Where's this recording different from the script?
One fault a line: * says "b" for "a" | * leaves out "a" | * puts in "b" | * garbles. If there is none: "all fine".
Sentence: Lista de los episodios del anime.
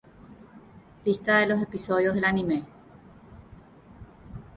all fine